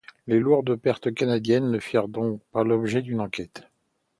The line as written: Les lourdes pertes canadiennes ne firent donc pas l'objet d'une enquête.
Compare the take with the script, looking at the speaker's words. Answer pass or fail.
pass